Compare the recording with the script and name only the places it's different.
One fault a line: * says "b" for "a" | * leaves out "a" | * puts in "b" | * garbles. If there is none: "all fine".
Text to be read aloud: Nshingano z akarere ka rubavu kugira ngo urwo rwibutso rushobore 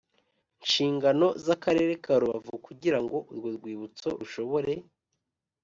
all fine